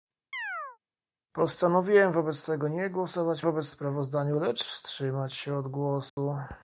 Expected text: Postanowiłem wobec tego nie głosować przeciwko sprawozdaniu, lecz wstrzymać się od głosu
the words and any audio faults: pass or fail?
fail